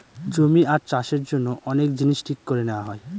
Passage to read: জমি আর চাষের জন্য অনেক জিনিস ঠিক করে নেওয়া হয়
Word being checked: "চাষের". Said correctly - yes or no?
yes